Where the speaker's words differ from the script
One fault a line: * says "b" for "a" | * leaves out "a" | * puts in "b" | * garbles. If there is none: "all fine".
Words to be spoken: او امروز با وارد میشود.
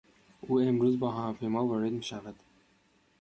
* puts in "هواپیما"